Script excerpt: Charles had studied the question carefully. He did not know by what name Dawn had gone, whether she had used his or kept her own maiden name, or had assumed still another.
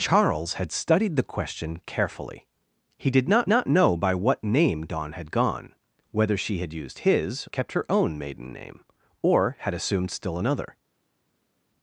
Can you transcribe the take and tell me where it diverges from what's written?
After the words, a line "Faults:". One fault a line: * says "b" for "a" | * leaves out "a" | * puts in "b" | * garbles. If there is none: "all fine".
Charles had studied the question carefully. He did not not know by what name Dawn had gone, whether she had used his kept her own maiden name, or had assumed still another.
Faults:
* puts in "not"
* leaves out "or"